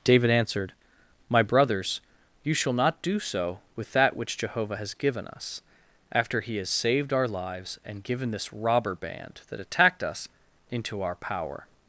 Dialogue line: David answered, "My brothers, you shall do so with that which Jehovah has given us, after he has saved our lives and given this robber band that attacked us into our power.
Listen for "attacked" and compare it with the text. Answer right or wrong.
right